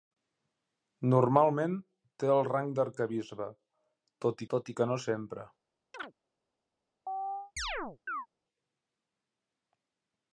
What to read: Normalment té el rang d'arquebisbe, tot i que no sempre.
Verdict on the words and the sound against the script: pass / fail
fail